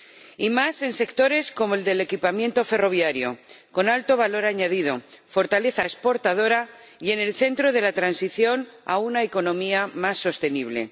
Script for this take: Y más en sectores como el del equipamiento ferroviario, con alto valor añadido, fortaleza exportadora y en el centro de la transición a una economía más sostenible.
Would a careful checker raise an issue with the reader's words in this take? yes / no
no